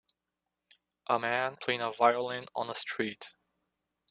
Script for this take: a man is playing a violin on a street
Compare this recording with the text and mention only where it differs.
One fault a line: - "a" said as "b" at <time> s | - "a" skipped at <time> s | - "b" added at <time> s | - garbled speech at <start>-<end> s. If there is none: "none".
- "is" skipped at 1.6 s